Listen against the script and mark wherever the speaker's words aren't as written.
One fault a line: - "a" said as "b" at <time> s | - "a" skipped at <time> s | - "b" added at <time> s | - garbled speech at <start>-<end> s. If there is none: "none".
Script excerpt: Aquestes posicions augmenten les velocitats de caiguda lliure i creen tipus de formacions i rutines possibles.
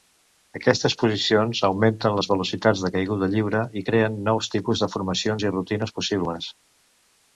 - "nous" added at 4.3 s